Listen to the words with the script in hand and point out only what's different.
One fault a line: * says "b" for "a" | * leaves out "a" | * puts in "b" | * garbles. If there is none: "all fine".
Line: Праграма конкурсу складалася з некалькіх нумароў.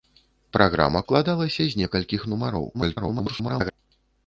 * leaves out "конкурсу"
* garbles